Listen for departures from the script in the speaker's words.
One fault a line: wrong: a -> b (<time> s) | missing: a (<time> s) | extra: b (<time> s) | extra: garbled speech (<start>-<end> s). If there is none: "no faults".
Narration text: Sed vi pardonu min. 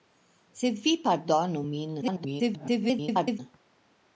extra: garbled speech (2.0-3.4 s)